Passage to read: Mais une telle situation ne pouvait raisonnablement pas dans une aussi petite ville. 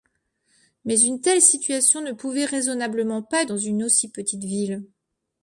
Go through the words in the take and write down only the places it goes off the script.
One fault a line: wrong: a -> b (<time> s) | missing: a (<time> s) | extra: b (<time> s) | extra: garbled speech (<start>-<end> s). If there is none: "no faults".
no faults